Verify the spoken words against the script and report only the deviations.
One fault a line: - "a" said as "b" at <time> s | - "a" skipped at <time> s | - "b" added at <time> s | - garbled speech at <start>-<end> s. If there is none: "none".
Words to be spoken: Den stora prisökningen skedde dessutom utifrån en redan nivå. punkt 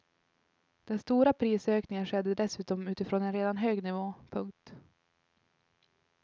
- "hög" added at 3.6 s